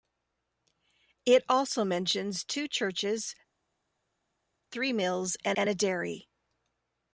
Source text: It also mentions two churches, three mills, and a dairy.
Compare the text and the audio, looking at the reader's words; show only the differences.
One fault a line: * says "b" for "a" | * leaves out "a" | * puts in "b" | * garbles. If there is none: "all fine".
* puts in "and"